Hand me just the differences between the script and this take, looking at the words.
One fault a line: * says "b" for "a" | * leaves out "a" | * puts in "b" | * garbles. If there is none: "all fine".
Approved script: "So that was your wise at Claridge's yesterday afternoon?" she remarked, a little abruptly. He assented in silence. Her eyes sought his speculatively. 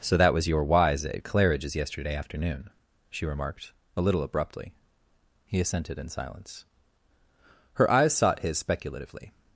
all fine